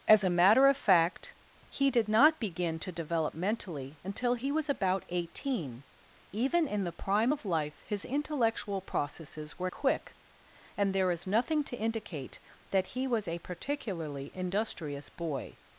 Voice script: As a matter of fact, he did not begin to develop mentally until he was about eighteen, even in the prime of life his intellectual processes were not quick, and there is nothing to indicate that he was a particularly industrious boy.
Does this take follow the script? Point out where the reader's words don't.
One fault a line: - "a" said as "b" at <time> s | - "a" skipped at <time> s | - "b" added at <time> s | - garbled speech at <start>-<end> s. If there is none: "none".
- "not" skipped at 9.7 s